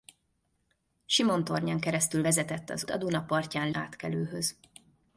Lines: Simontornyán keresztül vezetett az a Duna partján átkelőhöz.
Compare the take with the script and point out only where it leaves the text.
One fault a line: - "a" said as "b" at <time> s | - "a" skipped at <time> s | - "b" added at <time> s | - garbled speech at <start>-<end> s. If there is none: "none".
none